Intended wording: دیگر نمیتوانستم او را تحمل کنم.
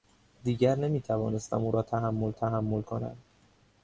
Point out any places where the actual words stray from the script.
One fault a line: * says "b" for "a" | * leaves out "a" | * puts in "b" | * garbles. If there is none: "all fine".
* puts in "تحمل"